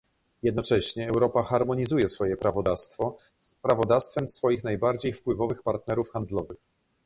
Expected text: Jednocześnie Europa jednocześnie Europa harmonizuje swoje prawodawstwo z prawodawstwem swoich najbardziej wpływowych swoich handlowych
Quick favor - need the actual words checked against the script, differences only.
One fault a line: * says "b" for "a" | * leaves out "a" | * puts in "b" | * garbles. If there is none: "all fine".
* leaves out "jednocześnie Europa"
* says "partnerów" for "swoich"